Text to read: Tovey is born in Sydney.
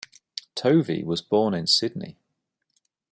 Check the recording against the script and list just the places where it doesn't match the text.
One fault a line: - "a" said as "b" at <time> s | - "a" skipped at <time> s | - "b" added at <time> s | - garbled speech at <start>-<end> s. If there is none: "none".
- "is" said as "was" at 1.0 s